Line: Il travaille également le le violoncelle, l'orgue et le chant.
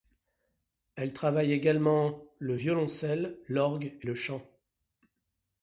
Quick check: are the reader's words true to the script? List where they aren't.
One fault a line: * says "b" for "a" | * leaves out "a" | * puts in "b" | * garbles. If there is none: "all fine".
* says "Elle" for "Il"
* leaves out "le"